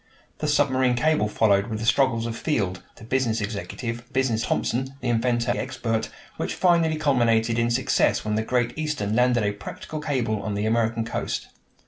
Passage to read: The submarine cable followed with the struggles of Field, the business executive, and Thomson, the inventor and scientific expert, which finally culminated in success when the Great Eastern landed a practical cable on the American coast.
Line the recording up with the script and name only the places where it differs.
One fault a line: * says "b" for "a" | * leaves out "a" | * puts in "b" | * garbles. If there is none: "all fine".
* says "business" for "and"
* leaves out "and scientific"